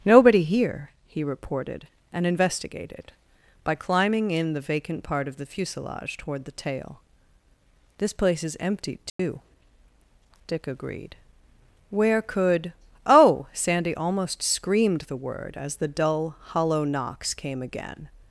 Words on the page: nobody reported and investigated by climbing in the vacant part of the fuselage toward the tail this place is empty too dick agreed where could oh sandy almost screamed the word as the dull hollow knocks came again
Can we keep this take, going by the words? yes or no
no